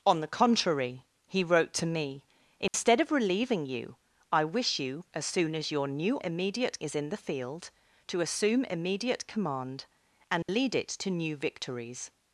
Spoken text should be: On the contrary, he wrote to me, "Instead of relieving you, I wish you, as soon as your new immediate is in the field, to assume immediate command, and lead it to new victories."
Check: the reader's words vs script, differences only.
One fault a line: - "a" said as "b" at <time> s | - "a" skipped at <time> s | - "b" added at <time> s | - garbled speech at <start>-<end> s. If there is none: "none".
none